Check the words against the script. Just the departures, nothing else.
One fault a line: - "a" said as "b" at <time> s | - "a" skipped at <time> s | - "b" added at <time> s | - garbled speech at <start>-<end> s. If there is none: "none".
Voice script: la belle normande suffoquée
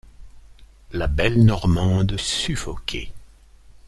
none